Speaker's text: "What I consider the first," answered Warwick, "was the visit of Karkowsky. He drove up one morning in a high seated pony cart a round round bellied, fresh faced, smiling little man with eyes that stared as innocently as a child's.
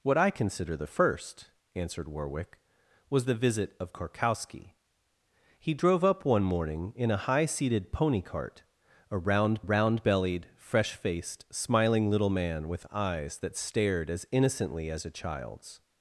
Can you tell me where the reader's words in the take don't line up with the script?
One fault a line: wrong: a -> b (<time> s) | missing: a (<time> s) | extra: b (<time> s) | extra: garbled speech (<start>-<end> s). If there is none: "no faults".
no faults